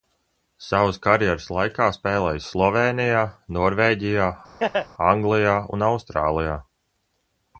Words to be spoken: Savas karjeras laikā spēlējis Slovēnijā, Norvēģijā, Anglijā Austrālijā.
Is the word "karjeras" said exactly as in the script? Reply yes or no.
yes